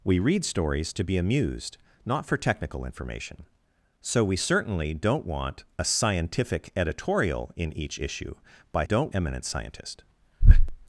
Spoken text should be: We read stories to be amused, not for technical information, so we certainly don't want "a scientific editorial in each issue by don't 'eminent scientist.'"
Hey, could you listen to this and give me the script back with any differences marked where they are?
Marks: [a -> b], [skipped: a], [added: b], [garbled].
We read stories to be amused, not for technical information, so we certainly don't want "a scientific editorial in each issue by don't 'eminent scientist.'"